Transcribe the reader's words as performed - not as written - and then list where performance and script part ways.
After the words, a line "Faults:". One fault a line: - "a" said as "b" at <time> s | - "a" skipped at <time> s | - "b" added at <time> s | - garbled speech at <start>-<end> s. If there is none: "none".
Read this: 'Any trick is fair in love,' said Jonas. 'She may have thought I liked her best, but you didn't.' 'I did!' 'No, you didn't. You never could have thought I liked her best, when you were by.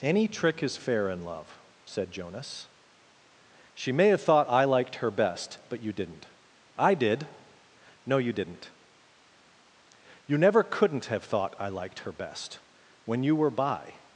'Any trick is fair in love,' said Jonas. 'She may have thought I liked her best, but you didn't.' 'I did!' 'No, you didn't. You never couldn't have thought I liked her best, when you were by.
Faults:
- "could" said as "couldn't" at 10.6 s